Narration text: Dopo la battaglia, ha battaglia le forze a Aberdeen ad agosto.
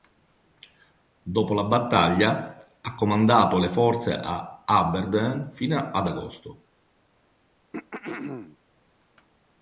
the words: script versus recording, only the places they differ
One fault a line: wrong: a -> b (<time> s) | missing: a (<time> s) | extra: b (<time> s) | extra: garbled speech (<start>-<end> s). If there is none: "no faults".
wrong: battaglia -> comandato (3.0 s)
extra: fino (5.5 s)